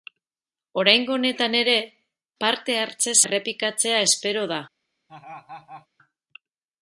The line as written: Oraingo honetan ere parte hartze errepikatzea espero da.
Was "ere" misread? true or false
false